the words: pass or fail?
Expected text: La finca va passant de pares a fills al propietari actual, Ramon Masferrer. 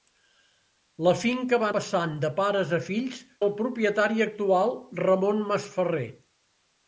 pass